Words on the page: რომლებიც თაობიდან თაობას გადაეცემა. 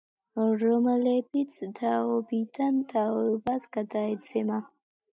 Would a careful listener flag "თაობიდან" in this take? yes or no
no